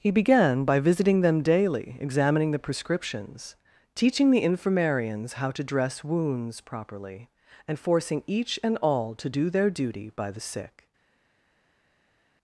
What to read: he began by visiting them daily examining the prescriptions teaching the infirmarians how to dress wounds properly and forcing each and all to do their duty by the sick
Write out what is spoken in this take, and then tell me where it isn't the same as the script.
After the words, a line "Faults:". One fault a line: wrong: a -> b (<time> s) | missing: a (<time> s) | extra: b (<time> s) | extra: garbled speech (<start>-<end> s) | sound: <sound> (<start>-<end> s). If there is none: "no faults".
he began by visiting them daily examining the prescriptions teaching the infirmarians how to dress wounds properly and forcing each and all to do their duty by the sick
Faults:
no faults